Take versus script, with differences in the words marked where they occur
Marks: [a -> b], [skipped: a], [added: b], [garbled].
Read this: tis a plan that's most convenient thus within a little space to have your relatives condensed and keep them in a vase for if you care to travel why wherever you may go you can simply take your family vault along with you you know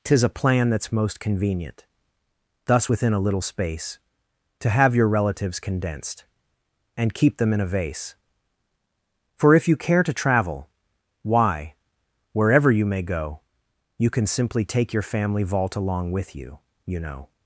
tis a plan that's most convenient thus within a little space to have your relatives condensed and keep them in a vase for if you care to travel why wherever you may go you can simply take your family vault along with you you know